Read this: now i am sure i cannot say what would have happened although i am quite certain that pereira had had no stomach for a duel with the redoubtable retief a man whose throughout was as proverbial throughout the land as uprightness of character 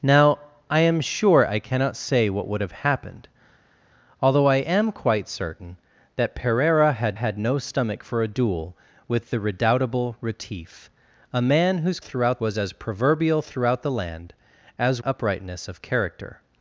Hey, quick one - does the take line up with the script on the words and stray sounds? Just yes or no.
yes